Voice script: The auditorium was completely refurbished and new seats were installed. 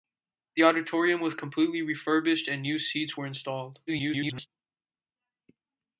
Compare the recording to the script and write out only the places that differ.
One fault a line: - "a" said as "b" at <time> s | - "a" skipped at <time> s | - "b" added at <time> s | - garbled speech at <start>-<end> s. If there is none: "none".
- garbled speech at 3.9-4.5 s